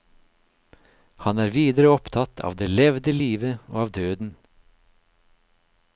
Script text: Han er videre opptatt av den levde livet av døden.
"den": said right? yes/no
no